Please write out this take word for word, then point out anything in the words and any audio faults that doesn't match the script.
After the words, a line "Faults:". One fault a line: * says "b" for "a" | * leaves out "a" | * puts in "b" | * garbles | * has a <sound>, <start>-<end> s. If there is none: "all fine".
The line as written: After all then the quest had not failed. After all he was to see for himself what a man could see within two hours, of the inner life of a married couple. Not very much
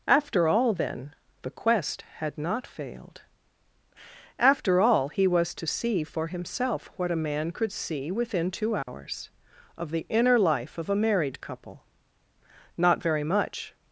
After all then the quest had not failed. After all he was to see for himself what a man could see within two hours, of the inner life of a married couple. Not very much
Faults:
* has a dropout, 8.8-8.9 s